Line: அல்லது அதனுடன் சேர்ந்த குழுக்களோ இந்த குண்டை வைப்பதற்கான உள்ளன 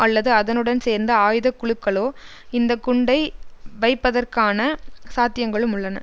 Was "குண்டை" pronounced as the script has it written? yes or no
yes